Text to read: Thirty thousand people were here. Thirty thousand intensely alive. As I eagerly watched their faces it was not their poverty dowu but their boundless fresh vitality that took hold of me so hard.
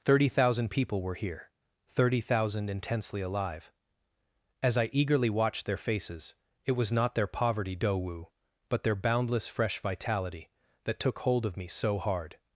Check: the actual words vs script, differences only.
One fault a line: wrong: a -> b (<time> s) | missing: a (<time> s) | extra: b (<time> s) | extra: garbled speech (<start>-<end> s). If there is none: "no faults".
no faults